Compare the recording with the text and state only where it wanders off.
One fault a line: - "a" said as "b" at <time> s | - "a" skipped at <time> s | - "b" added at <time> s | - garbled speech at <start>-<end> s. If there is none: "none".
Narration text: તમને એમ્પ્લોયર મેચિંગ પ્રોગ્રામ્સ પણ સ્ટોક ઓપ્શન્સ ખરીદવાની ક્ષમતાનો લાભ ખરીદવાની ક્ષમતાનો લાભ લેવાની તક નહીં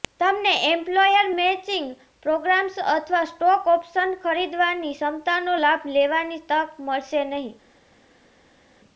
- "પણ" said as "અથવા" at 2.9 s
- "ખરીદવાની ક્ષમતાનો લાભ" skipped at 5.9 s
- "મળશે" added at 6.9 s